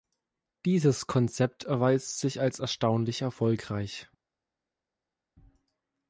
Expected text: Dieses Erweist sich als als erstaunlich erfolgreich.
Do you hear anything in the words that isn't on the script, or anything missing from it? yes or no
yes